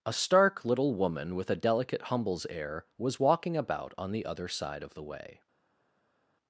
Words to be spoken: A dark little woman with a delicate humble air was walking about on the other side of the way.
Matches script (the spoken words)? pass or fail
fail